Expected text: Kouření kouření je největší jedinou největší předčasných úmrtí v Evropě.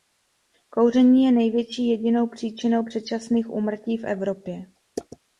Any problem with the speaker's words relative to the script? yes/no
yes